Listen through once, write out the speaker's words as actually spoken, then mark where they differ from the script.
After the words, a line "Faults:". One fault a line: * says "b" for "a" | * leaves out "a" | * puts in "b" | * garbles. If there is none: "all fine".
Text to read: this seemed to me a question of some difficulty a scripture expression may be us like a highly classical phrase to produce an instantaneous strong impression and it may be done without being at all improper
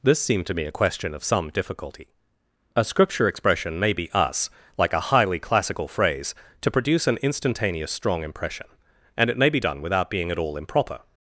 this seemed to me a question of some difficulty a scripture expression may be us like a highly classical phrase to produce an instantaneous strong impression and it may be done without being at all improper
Faults:
all fine